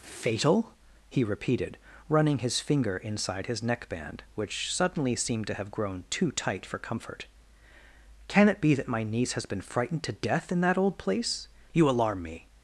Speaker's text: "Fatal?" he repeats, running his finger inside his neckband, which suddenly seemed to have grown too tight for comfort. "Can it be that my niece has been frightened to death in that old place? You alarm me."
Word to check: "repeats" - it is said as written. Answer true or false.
false